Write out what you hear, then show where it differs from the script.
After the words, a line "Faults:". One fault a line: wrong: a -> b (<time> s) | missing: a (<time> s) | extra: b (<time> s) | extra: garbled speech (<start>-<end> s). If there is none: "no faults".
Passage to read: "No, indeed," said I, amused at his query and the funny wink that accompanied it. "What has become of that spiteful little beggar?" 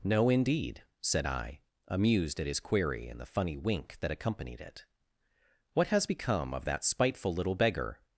"No, indeed," said I, amused at his query and the funny wink that accompanied it. "What has become of that spiteful little beggar?"
Faults:
no faults